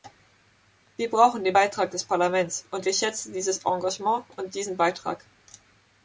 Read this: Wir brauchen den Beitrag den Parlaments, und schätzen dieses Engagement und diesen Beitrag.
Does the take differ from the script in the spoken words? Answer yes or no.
yes